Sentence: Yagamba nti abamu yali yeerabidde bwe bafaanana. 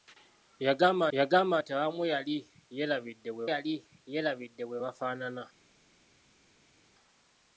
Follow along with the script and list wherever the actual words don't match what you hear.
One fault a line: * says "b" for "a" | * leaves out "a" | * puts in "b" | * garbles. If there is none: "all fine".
* puts in "yagamba"
* puts in "yali yeerabidde bwe"